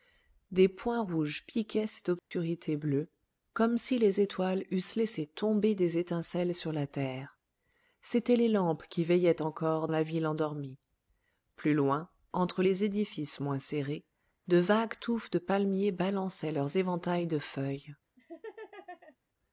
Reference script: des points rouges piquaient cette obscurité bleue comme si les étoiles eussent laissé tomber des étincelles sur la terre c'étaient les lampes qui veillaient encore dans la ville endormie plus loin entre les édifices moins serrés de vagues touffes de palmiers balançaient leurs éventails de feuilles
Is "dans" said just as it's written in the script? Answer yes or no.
no